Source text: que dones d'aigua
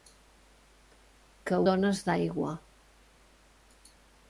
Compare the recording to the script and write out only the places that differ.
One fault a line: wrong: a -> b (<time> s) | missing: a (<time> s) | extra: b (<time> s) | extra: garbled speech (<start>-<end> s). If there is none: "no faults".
no faults